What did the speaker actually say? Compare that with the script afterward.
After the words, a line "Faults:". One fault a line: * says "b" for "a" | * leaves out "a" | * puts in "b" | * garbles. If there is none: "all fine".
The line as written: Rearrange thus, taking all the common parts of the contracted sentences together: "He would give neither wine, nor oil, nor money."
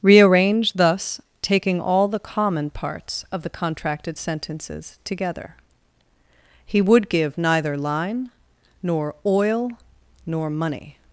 Rearrange thus, taking all the common parts of the contracted sentences together: "He would give neither line, nor oil, nor money."
Faults:
* says "line" for "wine"